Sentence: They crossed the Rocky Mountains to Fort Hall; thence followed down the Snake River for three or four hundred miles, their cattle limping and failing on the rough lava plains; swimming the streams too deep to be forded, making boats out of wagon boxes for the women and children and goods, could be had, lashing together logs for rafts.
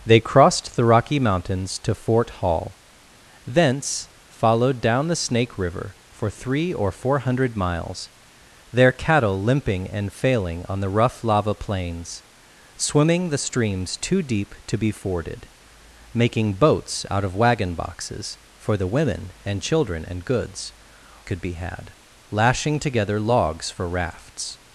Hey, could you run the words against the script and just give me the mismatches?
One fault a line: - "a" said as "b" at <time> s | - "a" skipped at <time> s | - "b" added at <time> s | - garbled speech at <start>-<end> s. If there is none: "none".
none